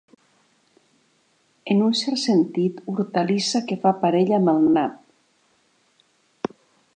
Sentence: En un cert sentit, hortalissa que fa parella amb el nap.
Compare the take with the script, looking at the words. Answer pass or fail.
fail